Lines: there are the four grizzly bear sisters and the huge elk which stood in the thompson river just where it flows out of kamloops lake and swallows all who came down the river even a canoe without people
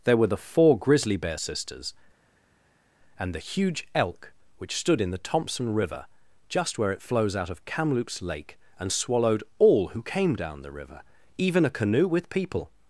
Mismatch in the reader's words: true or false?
true